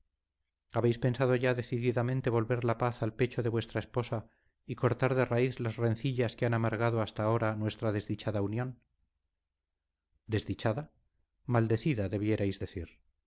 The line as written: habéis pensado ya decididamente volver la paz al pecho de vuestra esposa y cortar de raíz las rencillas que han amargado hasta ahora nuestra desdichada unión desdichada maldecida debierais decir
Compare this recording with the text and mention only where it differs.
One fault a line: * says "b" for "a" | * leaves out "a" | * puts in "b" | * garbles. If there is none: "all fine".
all fine